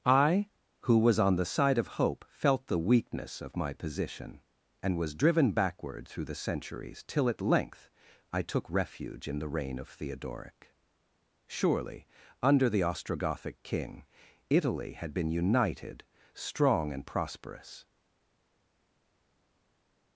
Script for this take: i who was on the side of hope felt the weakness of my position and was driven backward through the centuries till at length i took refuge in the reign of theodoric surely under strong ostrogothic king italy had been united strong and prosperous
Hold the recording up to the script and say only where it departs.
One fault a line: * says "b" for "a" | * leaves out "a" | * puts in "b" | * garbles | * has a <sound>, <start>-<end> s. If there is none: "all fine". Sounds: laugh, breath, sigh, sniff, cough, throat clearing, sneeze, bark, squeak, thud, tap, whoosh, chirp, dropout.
* says "the" for "strong"